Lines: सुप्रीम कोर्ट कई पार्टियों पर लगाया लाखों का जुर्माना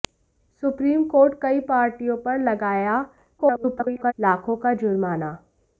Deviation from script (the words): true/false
true